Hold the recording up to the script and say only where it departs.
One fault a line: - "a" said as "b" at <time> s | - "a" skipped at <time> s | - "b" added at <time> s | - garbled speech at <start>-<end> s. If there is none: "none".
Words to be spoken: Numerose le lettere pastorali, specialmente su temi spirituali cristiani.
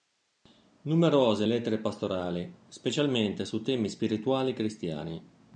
- "le" skipped at 1.4 s